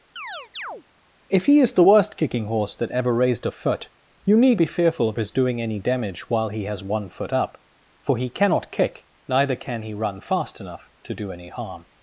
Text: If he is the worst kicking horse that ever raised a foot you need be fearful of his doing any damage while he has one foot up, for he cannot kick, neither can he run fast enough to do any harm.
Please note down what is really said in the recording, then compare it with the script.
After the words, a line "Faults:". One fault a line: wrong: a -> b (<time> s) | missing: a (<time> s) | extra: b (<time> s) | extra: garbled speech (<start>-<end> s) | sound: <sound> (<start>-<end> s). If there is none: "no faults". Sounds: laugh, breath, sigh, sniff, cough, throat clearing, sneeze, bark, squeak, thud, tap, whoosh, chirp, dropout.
If he is the worst kicking horse that ever raised a foot you need be fearful of his doing any damage while he has one foot up, for he cannot kick, neither can he run fast enough to do any harm.
Faults:
sound: chirp (0.2-0.8 s)